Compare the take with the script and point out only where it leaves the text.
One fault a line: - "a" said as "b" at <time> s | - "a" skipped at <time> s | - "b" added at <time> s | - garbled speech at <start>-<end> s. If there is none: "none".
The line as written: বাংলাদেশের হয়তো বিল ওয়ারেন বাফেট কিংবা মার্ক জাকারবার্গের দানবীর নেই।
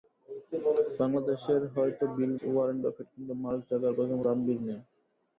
none